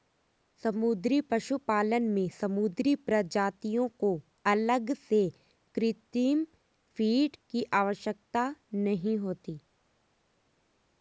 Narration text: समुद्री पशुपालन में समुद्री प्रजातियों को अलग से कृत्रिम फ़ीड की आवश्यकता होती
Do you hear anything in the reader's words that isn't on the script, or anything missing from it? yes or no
yes